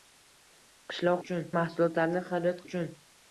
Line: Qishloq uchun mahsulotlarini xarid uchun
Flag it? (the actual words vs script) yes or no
no